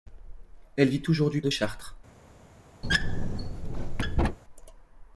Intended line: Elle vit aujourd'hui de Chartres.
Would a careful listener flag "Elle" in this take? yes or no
no